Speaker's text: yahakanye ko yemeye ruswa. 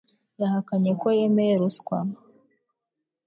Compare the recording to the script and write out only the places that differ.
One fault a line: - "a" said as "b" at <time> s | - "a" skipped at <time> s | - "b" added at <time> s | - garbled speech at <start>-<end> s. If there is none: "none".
none